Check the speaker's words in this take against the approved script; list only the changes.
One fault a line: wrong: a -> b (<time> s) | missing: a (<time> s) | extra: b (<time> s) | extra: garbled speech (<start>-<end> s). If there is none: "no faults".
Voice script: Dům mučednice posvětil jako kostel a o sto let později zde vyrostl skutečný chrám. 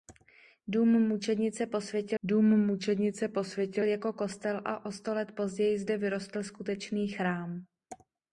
extra: dům mučednice posvětil (2.2 s)